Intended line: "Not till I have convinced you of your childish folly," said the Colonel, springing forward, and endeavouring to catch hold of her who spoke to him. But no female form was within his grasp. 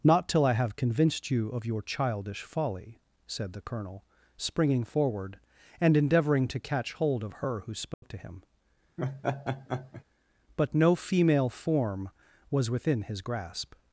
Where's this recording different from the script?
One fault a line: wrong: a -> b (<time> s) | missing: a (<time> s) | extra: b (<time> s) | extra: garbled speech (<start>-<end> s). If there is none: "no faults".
no faults